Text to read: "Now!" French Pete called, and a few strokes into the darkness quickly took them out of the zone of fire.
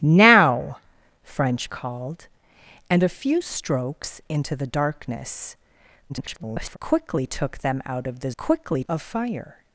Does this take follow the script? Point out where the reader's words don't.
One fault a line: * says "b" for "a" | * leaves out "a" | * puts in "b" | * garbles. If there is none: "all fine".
* leaves out "Pete"
* garbles
* says "quickly" for "zone"